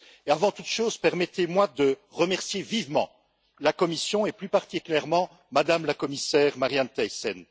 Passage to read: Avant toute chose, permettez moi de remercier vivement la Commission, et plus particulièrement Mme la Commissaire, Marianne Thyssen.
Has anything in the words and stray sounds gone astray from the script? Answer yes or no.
no